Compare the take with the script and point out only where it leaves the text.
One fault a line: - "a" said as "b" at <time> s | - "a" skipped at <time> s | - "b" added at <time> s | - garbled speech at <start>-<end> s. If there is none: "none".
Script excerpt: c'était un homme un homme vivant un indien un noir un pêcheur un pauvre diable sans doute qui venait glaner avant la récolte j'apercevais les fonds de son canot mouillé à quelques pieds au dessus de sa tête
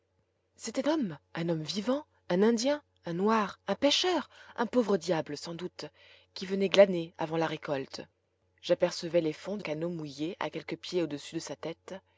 - "un" skipped at 0.9 s
- "son" skipped at 9.6 s